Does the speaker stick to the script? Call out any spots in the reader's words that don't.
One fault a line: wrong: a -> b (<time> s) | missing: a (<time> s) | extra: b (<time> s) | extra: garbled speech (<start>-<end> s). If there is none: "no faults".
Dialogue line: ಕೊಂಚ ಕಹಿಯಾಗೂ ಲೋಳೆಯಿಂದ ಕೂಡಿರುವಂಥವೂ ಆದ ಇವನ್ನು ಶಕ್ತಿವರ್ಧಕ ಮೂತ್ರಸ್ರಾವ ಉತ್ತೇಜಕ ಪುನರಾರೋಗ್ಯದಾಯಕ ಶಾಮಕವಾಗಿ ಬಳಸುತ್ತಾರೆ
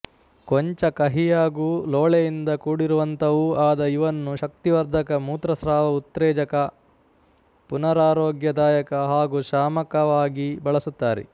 extra: ಹಾಗೂ (9.1 s)